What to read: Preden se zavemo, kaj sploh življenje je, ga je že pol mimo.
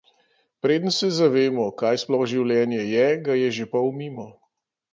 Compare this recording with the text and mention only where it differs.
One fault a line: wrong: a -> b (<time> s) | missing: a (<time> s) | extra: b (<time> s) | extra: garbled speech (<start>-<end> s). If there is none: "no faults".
no faults